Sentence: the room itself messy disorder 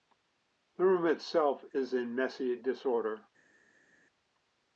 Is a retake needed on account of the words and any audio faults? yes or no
yes